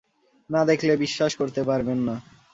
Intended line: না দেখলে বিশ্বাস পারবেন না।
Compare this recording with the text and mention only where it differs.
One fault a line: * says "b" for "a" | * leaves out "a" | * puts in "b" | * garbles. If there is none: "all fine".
* puts in "করতে"